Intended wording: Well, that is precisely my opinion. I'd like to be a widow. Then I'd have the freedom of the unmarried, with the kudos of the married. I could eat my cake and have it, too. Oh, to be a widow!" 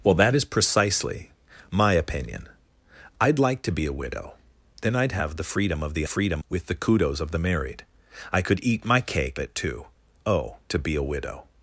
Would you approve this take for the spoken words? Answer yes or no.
no